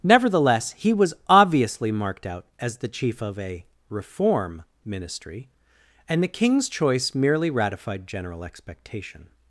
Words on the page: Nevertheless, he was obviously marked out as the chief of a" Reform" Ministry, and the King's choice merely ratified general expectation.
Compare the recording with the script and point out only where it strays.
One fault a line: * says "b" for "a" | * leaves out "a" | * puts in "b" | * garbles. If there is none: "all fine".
all fine